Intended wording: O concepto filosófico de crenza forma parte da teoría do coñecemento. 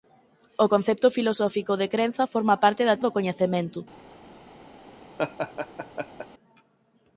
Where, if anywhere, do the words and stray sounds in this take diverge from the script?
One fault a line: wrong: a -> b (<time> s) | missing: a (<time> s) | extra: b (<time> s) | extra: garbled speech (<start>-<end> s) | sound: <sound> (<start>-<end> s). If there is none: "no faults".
missing: teoría (3.0 s)
sound: laugh (5.2-6.3 s)